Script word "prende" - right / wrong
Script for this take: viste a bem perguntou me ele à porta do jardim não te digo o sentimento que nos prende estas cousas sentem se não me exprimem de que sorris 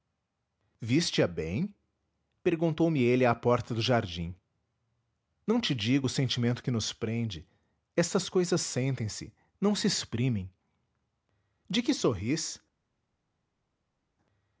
right